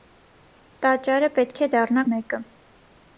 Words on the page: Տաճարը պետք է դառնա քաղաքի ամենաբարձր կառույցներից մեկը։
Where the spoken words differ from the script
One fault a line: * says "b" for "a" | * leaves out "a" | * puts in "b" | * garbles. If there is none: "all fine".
* leaves out "քաղաքի ամենաբարձր կառույցներից"